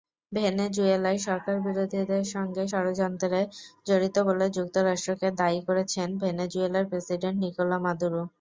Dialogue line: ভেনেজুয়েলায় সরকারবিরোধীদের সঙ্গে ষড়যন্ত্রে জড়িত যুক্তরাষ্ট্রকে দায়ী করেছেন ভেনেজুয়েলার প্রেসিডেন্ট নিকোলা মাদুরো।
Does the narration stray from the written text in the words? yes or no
yes